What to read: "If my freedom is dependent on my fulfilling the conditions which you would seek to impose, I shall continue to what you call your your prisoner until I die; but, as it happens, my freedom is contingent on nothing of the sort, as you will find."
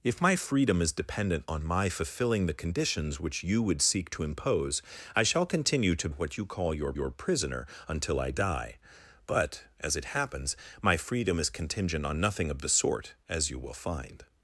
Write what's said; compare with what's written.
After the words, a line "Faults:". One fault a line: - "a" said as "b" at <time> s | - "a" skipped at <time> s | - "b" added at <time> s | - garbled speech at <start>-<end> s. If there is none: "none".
"If my freedom is dependent on my fulfilling the conditions which you would seek to impose, I shall continue to what you call your your prisoner until I die; but, as it happens, my freedom is contingent on nothing of the sort, as you will find."
Faults:
none